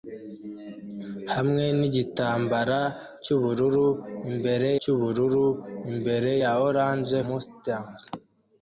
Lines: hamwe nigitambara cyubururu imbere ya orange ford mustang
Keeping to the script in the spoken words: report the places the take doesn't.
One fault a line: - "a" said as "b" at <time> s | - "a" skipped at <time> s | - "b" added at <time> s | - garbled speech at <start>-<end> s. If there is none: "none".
- "cyubururu imbere" added at 4.8 s
- "ford" skipped at 7.2 s